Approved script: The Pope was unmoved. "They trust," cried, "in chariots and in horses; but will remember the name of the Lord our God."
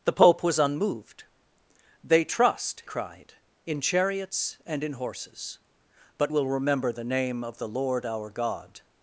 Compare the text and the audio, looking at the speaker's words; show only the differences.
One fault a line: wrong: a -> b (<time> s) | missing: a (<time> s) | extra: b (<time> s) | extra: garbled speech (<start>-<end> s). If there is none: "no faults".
no faults